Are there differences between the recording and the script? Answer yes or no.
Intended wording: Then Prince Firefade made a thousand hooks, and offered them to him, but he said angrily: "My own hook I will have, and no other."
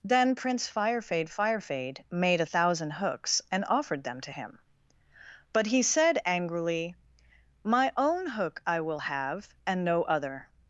yes